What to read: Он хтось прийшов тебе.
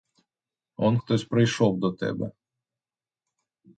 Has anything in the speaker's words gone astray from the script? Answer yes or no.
yes